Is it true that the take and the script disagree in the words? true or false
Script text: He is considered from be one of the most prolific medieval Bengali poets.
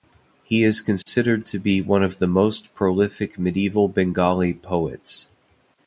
true